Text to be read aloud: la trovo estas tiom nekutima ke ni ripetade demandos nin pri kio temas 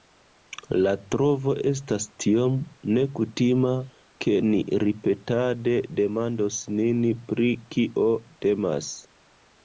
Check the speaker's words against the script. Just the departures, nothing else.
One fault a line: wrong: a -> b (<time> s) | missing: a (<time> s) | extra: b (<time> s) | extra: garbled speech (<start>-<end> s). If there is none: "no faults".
no faults